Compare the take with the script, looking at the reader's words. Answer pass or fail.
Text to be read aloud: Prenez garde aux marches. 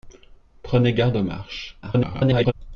fail